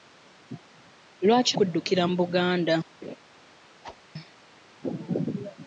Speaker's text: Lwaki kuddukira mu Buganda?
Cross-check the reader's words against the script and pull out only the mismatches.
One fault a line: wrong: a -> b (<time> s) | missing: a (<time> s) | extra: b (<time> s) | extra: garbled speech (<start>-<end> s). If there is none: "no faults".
no faults